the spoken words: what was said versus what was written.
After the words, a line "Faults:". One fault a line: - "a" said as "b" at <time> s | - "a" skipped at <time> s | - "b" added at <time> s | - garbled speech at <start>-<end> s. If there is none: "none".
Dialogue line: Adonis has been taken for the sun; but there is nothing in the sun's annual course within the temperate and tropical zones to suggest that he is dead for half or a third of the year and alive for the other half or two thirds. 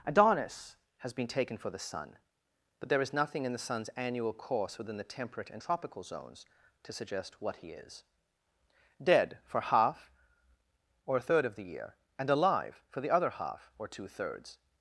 Adonis has been taken for the sun; but there is nothing in the sun's annual course within the temperate and tropical zones to suggest what he is dead for half or a third of the year and alive for the other half or two thirds.
Faults:
- "that" said as "what" at 7.4 s